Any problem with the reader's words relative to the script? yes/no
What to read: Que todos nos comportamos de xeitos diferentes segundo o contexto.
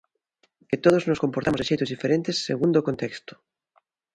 no